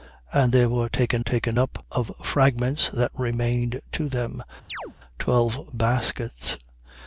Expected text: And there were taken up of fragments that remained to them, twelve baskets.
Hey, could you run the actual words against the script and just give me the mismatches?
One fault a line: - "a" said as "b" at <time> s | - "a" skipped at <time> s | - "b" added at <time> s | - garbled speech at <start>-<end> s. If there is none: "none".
- "taken" added at 1.2 s